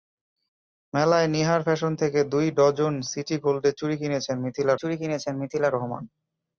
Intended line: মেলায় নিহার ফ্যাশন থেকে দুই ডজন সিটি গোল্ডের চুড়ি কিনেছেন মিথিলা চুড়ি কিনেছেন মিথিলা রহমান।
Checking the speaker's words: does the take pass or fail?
pass